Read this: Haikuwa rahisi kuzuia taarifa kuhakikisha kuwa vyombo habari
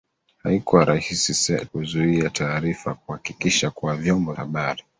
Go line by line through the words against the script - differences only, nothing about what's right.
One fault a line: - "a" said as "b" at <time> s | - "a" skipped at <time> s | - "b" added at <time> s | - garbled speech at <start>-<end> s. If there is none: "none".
none